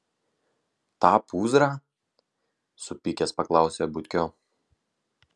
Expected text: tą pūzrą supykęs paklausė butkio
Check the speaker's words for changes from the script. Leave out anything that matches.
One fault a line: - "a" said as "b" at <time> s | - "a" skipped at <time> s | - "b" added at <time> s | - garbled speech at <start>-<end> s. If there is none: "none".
none